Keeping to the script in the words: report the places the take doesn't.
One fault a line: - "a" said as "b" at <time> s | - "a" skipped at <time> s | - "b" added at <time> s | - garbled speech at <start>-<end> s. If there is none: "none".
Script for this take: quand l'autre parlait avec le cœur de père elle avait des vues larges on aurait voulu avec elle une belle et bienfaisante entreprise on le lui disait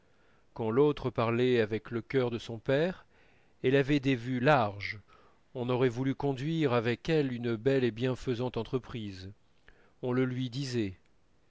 - "son" added at 2.4 s
- "conduire" added at 6.2 s